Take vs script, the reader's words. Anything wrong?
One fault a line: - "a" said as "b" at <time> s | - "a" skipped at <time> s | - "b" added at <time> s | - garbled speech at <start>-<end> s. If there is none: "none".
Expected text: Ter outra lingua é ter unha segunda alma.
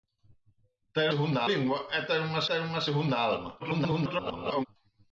- "outra" said as "segunda" at 1.1 s
- "ter unha" added at 2.5 s
- garbled speech at 3.6-4.7 s